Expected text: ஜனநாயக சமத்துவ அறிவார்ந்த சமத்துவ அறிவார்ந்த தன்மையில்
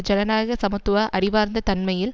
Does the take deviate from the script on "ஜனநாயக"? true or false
false